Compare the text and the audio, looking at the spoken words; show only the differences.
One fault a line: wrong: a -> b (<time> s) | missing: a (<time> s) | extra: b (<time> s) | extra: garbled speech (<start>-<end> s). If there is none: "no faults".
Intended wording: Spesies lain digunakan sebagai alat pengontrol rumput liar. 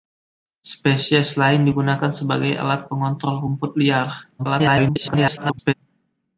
extra: garbled speech (4.4-5.7 s)